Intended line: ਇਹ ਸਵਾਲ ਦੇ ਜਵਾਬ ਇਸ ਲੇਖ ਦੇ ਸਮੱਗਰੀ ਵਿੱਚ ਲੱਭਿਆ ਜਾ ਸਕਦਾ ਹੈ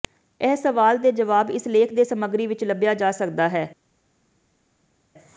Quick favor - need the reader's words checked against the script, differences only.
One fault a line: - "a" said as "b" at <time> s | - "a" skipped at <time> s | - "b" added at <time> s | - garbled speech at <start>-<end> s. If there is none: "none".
none